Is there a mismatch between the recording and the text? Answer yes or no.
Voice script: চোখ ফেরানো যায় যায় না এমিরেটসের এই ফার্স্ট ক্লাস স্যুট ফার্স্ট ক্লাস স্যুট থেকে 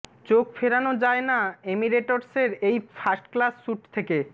yes